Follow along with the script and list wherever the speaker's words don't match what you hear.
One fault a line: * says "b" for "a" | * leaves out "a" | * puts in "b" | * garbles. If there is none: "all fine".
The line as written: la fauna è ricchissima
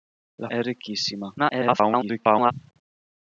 * leaves out "fauna"
* garbles